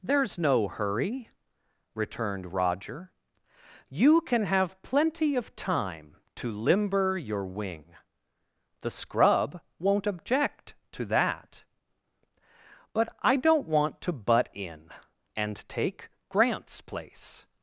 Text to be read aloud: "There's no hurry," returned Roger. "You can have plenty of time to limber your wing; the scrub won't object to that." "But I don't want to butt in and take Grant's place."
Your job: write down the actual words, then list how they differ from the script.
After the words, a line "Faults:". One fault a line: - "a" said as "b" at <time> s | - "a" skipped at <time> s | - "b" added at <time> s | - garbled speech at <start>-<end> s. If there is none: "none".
"There's no hurry," returned Roger. "You can have plenty of time to limber your wing; the scrub won't object to that." "But I don't want to butt in and take Grant's place."
Faults:
none